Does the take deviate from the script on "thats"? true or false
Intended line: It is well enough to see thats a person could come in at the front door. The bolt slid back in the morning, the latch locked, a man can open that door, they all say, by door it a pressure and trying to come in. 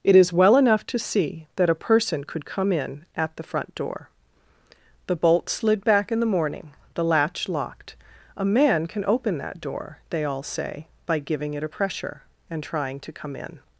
true